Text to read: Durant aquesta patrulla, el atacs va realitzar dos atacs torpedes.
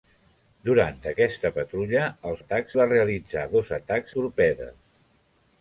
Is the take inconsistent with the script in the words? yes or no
no